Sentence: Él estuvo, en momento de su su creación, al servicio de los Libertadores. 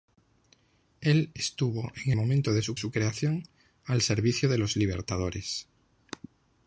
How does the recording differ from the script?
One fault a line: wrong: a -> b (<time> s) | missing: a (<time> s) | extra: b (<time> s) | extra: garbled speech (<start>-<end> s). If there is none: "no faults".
no faults